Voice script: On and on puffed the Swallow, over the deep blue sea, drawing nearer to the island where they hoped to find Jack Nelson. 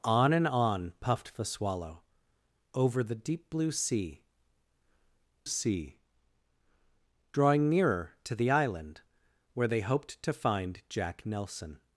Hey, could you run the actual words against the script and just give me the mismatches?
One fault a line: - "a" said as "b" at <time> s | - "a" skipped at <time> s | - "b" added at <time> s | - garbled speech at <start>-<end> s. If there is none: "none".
- "sea" added at 5.4 s